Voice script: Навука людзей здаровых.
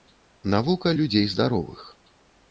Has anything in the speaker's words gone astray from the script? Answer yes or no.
no